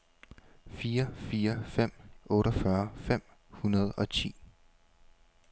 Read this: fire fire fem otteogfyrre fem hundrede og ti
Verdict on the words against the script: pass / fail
pass